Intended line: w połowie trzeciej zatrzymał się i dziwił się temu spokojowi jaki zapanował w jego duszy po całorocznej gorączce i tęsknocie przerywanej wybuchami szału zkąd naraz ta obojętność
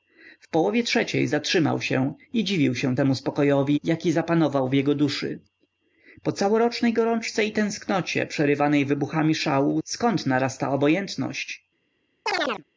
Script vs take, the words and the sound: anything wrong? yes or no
yes